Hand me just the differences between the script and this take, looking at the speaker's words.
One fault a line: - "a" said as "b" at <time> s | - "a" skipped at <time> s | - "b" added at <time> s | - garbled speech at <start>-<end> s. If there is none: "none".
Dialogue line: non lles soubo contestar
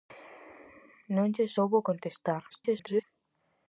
- garbled speech at 2.5-3.0 s